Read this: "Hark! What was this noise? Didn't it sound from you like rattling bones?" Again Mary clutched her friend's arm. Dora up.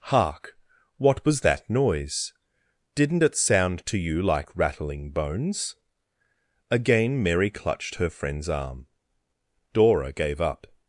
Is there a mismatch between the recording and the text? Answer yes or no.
yes